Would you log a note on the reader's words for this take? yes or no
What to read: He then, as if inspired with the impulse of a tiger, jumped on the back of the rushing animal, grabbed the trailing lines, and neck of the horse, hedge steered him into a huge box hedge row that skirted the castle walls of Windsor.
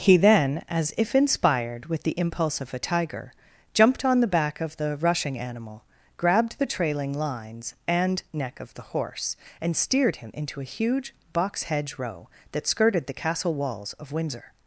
yes